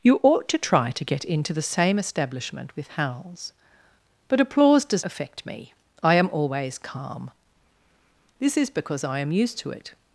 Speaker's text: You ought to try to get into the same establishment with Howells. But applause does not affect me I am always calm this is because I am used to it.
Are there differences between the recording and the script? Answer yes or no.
yes